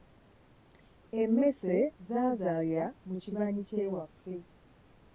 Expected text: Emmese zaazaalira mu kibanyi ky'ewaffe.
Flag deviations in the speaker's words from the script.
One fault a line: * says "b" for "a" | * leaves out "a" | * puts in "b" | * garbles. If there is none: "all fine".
all fine